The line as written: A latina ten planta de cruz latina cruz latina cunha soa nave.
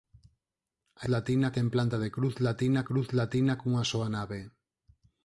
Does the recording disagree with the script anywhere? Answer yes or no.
no